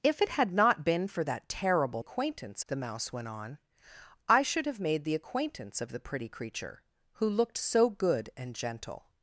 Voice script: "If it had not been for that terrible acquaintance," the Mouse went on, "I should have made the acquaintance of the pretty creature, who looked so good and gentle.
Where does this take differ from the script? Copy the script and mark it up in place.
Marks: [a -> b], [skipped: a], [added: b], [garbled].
"If it had not been for that terrible acquaintance," the Mouse went on, "I should have made the acquaintance of the pretty creature, who looked so good and gentle.